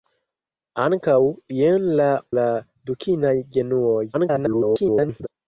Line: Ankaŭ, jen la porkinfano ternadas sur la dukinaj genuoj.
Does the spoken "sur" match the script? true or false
false